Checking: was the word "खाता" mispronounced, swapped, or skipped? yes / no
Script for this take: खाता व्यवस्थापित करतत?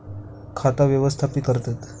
no